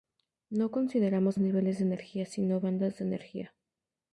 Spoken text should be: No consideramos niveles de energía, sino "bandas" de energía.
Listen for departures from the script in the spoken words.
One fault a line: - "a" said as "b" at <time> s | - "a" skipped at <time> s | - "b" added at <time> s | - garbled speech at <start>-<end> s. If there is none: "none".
none